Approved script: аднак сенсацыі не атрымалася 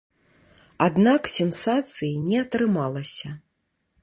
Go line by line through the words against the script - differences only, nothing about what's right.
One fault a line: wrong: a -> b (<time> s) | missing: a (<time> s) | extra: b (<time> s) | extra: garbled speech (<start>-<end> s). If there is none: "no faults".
no faults